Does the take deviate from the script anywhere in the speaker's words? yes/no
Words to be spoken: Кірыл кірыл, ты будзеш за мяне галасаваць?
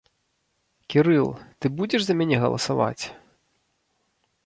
yes